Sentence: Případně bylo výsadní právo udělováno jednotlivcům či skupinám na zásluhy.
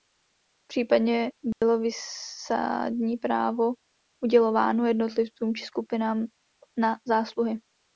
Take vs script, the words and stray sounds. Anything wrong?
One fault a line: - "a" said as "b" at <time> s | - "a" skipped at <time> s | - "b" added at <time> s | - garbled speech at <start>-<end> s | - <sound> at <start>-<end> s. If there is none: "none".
- dropout at 1.5-1.6 s